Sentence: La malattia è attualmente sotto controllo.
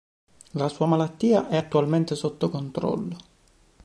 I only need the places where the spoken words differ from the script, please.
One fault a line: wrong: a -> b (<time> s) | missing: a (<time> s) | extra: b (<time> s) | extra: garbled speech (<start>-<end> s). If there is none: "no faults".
extra: sua (0.7 s)